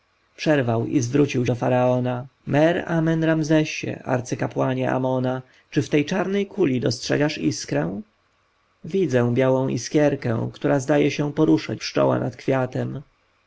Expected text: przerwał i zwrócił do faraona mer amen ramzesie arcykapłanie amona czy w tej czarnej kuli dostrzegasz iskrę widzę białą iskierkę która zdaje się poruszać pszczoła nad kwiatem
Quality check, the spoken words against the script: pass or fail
pass